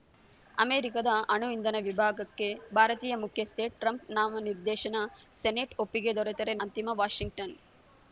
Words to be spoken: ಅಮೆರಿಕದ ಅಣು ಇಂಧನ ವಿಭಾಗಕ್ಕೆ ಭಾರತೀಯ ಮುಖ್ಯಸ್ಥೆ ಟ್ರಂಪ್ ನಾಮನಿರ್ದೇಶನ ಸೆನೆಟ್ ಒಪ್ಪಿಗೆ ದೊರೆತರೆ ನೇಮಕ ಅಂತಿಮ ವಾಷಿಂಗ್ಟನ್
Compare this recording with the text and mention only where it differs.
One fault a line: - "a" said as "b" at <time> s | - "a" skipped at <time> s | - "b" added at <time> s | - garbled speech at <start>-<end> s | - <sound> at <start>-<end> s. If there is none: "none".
- "ನೇಮಕ" skipped at 6.5 s